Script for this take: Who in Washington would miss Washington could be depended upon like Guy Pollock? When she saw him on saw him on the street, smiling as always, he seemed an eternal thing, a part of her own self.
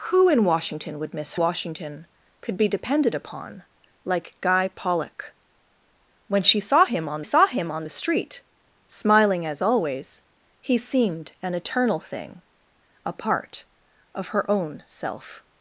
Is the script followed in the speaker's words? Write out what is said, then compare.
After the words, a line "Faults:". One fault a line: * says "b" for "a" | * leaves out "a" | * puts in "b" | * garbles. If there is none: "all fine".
Who in Washington would miss Washington could be depended upon like Guy Pollock? When she saw him on saw him on the street, smiling as always, he seemed an eternal thing, a part of her own self.
Faults:
all fine